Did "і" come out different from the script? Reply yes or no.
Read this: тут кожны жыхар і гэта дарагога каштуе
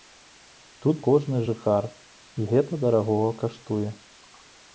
no